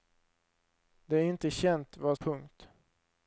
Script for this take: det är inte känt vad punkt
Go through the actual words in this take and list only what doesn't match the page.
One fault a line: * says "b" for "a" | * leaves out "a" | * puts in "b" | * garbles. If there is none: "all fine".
all fine